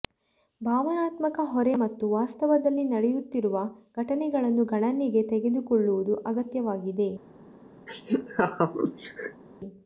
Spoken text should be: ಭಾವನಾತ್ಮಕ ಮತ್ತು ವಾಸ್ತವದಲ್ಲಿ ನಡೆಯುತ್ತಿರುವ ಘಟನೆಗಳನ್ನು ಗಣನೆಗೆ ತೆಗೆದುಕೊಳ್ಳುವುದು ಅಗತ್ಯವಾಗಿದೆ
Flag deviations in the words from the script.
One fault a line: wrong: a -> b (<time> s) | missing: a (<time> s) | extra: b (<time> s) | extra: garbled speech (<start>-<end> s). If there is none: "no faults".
extra: ಹೊರೆ (1.5 s)